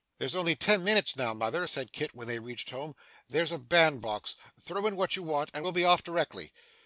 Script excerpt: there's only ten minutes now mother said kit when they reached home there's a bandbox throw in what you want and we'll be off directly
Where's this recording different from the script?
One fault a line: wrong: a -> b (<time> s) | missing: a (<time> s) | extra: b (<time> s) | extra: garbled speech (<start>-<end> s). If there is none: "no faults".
no faults